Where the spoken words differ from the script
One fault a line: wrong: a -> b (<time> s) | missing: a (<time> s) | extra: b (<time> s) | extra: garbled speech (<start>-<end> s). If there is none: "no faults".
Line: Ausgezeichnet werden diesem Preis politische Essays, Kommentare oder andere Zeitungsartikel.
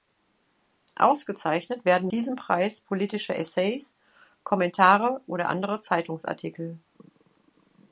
no faults